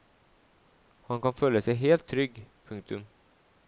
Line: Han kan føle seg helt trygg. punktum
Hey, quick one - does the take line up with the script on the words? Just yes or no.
yes